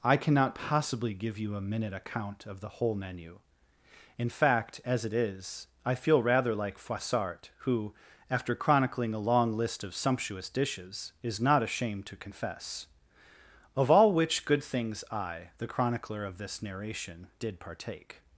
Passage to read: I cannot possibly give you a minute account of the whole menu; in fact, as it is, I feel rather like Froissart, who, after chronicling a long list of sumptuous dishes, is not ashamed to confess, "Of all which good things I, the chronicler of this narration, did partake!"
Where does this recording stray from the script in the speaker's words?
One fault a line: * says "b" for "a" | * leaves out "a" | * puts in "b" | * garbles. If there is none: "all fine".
all fine